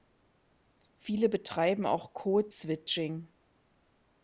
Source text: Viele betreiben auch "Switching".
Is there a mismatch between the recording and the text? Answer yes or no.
yes